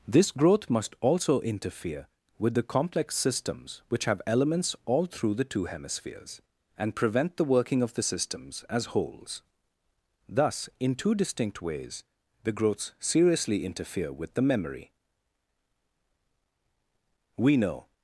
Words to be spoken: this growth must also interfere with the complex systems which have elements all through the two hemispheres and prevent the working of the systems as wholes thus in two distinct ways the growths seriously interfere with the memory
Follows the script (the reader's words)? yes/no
no